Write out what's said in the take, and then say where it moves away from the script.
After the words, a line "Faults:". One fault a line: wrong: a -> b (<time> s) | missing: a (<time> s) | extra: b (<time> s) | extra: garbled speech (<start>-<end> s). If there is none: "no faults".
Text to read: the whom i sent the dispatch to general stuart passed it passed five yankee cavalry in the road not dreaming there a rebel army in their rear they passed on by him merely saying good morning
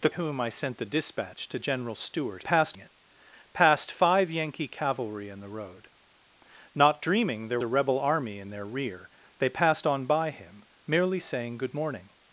the whom i sent the dispatch to general stuart passed it passed five yankee cavalry in the road not dreaming there a rebel army in their rear they passed on by him merely saying good morning
Faults:
no faults